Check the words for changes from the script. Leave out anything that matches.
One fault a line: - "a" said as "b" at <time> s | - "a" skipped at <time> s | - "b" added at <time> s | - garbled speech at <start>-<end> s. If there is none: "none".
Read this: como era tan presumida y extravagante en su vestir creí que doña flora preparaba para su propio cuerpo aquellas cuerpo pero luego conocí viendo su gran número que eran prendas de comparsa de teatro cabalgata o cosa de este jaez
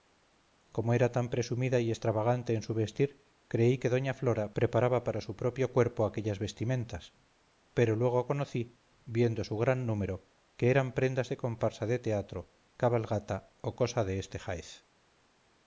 - "cuerpo" said as "vestimentas" at 6.4 s